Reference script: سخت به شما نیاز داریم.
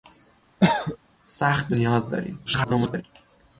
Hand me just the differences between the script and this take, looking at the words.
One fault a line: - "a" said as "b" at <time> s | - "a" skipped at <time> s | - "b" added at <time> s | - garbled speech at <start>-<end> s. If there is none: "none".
- "شما" skipped at 1.7 s
- garbled speech at 2.5-3.0 s